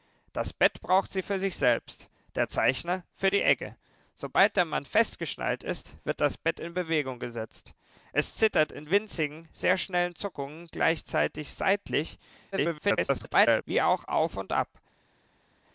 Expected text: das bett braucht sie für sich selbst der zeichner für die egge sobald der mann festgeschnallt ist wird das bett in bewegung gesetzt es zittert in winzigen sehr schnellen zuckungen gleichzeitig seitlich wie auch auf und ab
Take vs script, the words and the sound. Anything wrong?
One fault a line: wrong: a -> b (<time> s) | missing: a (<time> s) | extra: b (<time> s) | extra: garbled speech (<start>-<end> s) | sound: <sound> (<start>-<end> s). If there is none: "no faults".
extra: garbled speech (12.5-13.6 s)